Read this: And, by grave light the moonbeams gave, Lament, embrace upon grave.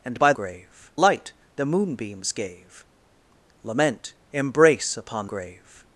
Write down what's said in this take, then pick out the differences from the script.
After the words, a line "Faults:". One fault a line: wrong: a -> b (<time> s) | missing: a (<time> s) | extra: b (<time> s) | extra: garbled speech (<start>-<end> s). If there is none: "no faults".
And, by grave light the moonbeams gave, Lament, embrace upon grave.
Faults:
no faults